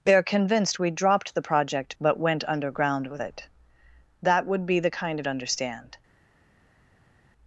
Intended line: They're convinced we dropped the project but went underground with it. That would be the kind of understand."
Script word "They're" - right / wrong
right